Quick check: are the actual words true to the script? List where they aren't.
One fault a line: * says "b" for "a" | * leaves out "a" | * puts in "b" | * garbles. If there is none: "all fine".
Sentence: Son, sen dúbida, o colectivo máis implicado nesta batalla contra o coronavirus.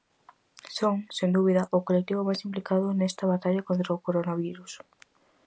all fine